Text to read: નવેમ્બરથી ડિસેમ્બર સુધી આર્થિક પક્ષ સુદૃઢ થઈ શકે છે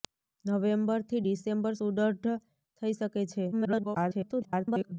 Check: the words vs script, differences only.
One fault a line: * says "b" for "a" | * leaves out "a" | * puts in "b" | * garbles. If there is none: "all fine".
* leaves out "સુધી આર્થિક પક્ષ"
* garbles